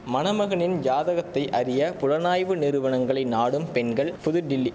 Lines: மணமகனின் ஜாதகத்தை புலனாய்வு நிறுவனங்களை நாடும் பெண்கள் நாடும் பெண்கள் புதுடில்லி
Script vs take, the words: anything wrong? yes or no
yes